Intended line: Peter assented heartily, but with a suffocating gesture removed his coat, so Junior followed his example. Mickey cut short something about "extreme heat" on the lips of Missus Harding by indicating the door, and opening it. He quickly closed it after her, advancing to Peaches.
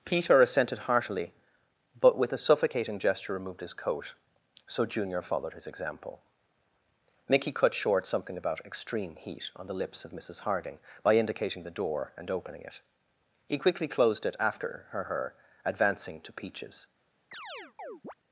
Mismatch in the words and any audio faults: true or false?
true